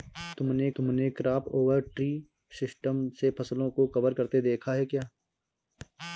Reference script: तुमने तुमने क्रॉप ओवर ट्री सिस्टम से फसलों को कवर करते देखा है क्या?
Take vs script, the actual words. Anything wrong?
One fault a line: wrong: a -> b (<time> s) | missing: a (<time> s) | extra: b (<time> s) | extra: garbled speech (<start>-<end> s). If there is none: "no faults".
no faults